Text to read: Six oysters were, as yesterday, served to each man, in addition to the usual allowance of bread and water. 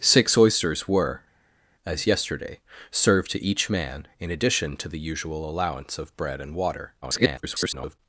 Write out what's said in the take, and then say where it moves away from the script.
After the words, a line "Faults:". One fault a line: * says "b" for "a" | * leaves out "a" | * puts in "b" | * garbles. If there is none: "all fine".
Six oysters were, as yesterday, served to each man, in addition to the usual allowance of bread and water. [garbled]
Faults:
* garbles